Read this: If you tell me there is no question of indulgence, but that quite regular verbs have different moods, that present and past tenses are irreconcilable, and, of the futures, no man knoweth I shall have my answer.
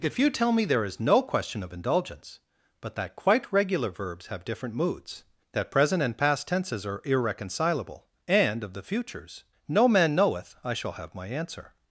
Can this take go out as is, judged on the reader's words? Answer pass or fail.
pass